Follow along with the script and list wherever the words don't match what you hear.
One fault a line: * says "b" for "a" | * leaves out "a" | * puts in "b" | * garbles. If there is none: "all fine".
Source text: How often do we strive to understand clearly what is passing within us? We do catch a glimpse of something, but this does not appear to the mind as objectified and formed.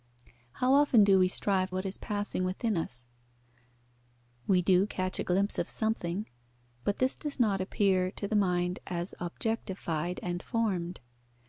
* leaves out "to understand clearly"